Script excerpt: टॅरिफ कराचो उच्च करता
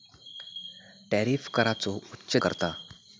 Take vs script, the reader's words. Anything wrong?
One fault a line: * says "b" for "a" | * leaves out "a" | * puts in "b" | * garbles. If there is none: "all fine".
all fine